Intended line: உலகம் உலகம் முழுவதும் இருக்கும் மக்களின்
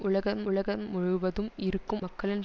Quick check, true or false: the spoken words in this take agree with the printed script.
true